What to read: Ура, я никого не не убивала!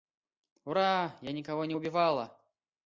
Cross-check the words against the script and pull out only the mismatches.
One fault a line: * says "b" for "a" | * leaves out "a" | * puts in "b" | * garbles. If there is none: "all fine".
* leaves out "не"